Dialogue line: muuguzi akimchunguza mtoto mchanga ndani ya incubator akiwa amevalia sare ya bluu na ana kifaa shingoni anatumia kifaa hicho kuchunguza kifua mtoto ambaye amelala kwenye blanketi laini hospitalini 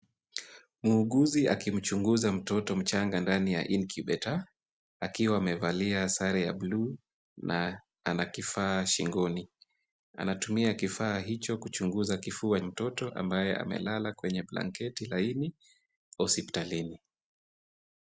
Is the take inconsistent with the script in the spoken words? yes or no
no